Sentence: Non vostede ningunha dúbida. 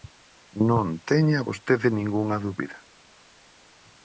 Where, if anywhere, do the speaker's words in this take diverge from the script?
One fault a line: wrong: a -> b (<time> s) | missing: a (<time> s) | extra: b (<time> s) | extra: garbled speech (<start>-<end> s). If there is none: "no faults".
extra: teña (1.1 s)